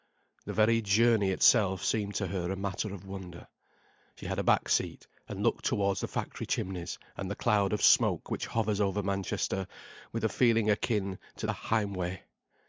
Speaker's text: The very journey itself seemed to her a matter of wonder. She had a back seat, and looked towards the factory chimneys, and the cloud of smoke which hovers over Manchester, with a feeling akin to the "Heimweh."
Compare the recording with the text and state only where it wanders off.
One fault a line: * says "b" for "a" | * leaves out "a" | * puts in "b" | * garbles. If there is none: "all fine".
all fine